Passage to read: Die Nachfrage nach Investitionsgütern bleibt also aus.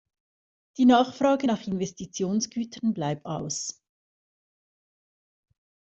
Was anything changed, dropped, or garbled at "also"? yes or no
yes